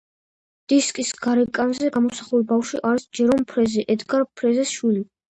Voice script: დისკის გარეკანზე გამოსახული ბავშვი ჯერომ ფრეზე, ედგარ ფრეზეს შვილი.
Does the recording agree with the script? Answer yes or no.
no